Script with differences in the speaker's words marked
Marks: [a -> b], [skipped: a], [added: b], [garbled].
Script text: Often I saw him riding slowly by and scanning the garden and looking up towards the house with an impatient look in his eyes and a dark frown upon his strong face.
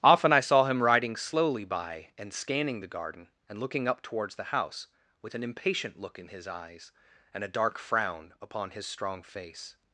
Often I saw him riding slowly by and scanning the garden and looking up towards the house with an impatient look in his eyes and a dark frown upon his strong face.